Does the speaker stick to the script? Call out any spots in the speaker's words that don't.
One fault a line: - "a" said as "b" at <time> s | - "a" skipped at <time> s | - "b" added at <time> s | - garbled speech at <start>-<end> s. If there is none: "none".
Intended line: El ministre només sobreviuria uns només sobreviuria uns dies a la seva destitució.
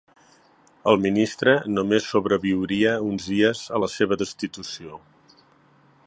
- "només sobreviuria uns" skipped at 3.3 s